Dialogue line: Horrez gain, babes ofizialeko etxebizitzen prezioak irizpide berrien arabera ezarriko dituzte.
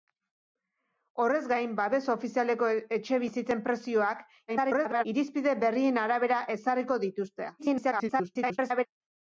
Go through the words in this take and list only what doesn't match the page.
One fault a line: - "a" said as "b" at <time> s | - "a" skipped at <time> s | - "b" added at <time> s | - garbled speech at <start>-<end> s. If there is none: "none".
- garbled speech at 4.5-5.1 s
- garbled speech at 7.6-8.9 s